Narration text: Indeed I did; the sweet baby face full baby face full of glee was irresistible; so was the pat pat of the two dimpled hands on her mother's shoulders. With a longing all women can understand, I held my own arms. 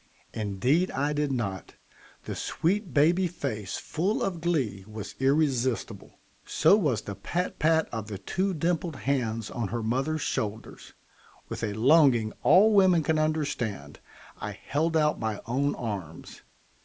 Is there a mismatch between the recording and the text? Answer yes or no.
yes